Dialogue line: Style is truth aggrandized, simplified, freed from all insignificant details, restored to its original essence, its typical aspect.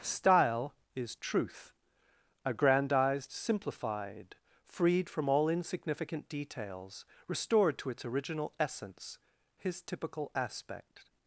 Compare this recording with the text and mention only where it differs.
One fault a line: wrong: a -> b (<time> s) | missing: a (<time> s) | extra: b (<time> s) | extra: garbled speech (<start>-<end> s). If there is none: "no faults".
wrong: its -> his (9.6 s)